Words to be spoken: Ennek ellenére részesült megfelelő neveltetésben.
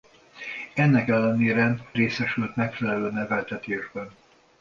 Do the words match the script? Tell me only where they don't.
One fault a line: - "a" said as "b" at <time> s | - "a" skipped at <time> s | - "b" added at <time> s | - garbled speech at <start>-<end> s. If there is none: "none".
none